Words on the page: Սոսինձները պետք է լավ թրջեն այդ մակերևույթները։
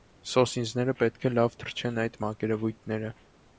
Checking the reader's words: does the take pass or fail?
pass